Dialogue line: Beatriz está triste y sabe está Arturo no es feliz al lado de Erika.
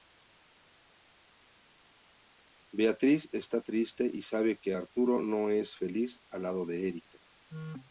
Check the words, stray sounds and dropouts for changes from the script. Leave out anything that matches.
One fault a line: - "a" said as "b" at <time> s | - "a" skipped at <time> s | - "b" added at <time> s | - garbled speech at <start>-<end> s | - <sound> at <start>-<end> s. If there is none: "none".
- "está" said as "que" at 4.6 s